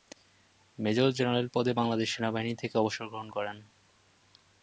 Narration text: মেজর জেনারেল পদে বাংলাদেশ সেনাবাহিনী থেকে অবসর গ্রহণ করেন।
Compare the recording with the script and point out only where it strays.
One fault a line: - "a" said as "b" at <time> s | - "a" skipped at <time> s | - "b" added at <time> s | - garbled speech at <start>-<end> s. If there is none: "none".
none